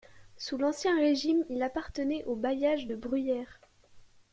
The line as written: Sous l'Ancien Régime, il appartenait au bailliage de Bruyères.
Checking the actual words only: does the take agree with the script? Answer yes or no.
yes